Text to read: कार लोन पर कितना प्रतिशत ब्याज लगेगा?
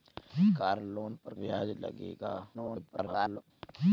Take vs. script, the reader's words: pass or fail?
fail